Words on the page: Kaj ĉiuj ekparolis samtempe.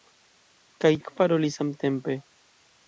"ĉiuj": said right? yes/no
no